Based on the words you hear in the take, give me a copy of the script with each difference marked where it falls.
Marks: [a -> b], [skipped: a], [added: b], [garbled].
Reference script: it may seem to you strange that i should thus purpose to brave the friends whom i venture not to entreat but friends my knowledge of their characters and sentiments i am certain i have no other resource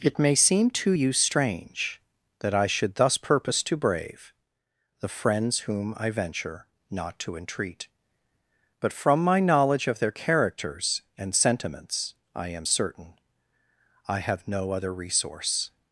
it may seem to you strange that i should thus purpose to brave the friends whom i venture not to entreat but [friends -> from] my knowledge of their characters and sentiments i am certain i have no other resource